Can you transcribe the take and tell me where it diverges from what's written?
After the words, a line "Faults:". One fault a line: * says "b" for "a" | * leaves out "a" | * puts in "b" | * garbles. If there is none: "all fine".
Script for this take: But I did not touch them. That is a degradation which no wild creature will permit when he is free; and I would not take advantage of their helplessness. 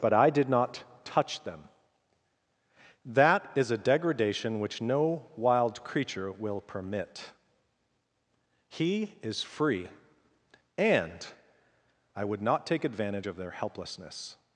But I did not touch them. That is a degradation which no wild creature will permit he is free; and I would not take advantage of their helplessness.
Faults:
* leaves out "when"